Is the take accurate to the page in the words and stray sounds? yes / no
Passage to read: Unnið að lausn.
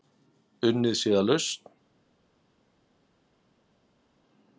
no